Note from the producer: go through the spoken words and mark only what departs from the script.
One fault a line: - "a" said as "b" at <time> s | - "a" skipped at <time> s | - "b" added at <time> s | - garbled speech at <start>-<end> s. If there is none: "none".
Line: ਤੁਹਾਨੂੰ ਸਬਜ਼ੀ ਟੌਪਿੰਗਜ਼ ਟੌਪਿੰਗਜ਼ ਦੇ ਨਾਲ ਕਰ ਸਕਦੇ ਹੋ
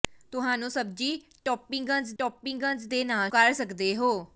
none